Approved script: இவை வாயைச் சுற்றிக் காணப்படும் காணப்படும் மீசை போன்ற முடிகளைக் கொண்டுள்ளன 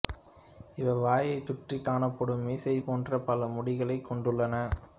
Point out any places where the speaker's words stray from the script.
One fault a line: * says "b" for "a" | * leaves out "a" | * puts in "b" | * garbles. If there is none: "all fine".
* leaves out "காணப்படும்"
* puts in "பல"